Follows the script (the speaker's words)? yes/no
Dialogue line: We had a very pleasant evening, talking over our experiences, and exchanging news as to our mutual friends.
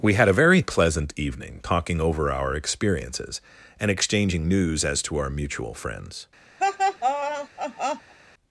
yes